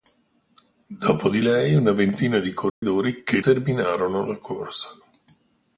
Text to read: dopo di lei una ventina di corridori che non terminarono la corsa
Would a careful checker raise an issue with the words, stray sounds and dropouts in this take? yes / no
yes